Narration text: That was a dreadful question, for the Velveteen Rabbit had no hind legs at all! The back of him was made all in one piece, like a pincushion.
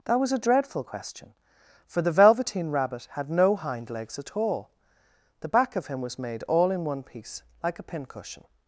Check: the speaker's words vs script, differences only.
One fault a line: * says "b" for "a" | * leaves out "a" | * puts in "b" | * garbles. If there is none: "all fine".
all fine